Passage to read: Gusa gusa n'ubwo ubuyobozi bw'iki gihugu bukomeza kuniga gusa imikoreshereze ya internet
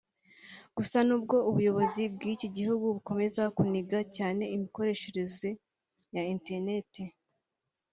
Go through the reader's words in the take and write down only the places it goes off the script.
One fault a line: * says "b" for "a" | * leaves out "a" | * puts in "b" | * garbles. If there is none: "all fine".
* leaves out "gusa"
* says "cyane" for "gusa"